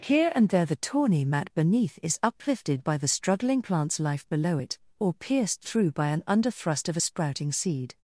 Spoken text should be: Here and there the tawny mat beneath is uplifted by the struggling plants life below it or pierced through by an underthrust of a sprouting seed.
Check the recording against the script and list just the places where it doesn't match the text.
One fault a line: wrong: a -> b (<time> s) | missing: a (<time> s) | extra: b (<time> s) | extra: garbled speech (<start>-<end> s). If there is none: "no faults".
no faults